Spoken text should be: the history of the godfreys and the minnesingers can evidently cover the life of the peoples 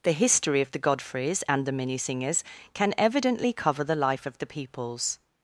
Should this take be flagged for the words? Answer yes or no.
no